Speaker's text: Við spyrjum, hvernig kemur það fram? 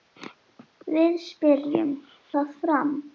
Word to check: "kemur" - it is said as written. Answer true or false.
false